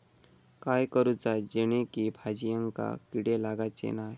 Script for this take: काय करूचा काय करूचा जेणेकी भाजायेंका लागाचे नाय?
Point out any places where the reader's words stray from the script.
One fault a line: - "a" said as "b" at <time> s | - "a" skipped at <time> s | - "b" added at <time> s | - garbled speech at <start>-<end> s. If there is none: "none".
- "काय करूचा" skipped at 1.4 s
- "किडे" added at 3.1 s